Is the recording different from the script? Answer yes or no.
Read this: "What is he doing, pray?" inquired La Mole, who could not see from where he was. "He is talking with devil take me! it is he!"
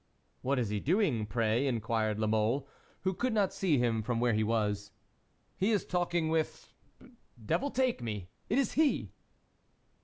yes